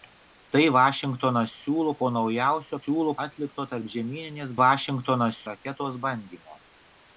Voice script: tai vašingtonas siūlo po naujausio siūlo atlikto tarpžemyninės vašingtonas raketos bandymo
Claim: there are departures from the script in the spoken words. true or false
false